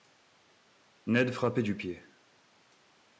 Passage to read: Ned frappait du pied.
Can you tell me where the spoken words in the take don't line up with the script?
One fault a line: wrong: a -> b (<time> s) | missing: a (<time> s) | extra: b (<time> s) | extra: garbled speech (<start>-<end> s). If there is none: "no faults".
no faults